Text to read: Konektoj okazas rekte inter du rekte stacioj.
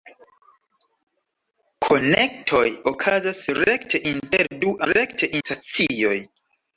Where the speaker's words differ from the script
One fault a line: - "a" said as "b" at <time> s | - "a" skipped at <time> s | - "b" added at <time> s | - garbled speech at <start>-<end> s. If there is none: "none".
none